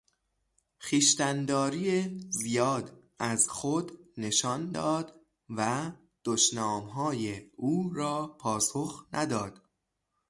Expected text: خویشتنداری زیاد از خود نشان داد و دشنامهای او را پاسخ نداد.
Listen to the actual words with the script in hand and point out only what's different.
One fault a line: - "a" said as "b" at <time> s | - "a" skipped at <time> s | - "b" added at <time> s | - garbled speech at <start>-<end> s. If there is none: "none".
none